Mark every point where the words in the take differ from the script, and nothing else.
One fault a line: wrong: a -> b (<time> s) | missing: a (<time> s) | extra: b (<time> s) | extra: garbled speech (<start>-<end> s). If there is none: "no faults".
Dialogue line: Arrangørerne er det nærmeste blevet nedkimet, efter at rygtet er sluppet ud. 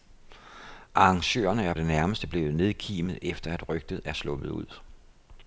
no faults